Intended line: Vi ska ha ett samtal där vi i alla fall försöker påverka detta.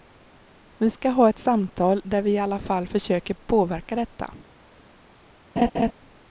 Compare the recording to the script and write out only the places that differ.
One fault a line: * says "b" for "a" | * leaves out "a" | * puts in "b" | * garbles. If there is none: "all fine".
all fine